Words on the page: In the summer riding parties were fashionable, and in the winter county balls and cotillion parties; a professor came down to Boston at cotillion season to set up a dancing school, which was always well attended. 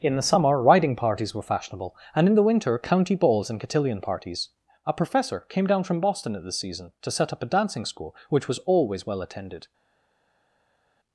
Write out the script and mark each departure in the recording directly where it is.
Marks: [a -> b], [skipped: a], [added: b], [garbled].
In the summer riding parties were fashionable, and in the winter county balls and cotillion parties; a professor came down [to -> from] Boston at [cotillion -> this] season to set up a dancing school, which was always well attended.